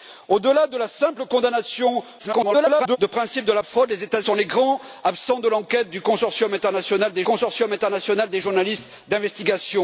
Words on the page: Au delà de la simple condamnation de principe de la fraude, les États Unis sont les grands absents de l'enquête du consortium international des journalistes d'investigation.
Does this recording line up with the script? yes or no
no